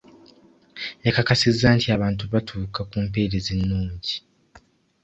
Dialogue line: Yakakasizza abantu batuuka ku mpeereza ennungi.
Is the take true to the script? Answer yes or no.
no